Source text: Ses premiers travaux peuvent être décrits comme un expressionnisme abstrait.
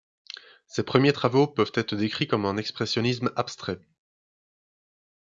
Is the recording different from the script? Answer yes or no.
no